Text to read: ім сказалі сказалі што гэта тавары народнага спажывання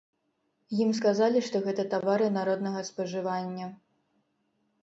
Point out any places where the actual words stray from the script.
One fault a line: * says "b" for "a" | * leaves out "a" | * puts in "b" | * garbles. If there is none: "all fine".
* leaves out "сказалі"